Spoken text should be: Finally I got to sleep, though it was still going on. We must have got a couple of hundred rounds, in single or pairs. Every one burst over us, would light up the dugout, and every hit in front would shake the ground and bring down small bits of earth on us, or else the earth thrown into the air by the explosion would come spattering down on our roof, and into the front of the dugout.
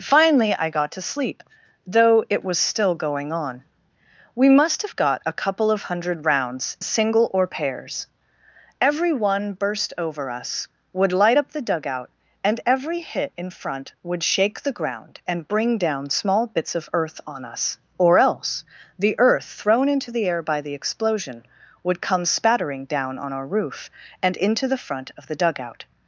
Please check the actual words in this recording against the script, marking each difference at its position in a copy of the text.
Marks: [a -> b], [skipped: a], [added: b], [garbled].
Finally I got to sleep, though it was still going on. We must have got a couple of hundred rounds, [skipped: in] single or pairs. Every one burst over us, would light up the dugout, and every hit in front would shake the ground and bring down small bits of earth on us, or else the earth thrown into the air by the explosion would come spattering down on our roof, and into the front of the dugout.